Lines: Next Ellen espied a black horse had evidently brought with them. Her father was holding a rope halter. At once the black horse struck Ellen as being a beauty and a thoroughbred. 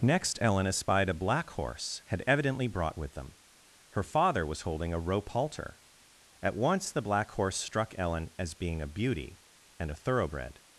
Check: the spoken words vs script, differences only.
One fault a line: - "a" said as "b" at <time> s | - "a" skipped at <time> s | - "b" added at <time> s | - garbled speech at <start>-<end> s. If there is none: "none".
none